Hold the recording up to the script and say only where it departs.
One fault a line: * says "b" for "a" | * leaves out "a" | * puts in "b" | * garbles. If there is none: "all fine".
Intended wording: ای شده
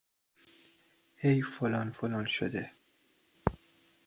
* puts in "فلان فلان"